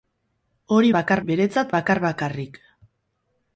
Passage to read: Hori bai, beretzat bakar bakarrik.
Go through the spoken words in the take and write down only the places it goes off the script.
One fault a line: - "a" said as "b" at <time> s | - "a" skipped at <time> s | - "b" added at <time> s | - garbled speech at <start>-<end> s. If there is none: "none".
- "bai" said as "bakar" at 1.0 s